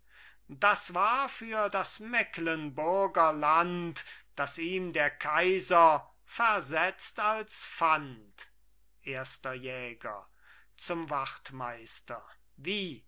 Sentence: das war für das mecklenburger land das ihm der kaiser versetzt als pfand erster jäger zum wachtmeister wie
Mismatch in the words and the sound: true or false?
false